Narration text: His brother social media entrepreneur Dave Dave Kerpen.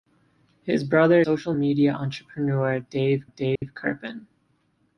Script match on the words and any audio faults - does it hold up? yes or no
no